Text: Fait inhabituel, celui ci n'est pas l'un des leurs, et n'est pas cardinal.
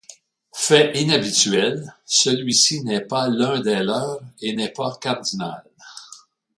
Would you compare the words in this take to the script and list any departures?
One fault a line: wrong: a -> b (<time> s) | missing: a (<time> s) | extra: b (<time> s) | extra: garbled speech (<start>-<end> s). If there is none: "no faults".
no faults